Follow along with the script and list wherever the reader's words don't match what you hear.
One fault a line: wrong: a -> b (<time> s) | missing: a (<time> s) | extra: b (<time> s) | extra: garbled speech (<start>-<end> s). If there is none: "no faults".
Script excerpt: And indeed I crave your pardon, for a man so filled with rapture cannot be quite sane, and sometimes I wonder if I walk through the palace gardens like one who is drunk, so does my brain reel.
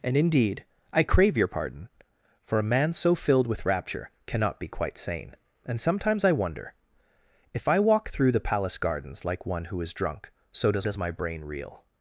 extra: does (10.8 s)